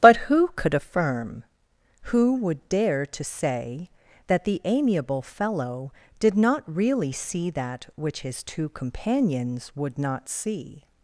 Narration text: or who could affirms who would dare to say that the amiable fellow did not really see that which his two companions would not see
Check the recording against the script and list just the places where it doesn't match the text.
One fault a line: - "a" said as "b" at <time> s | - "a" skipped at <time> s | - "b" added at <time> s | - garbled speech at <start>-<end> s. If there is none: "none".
- "or" said as "but" at 0.0 s
- "affirms" said as "affirm" at 0.7 s